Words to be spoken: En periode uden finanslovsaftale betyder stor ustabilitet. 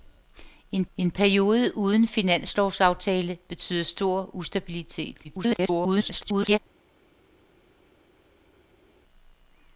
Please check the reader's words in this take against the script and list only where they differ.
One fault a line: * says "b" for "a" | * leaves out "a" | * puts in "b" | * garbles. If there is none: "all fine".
* puts in "en"
* garbles